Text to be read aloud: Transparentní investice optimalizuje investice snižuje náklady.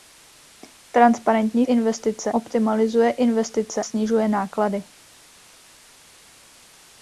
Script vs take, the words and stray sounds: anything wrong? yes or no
no